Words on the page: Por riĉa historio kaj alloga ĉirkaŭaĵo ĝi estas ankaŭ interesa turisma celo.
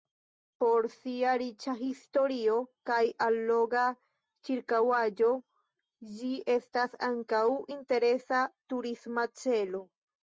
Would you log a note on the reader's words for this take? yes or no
yes